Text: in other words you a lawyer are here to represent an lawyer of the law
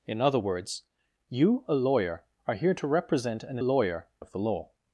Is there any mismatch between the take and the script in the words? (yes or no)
no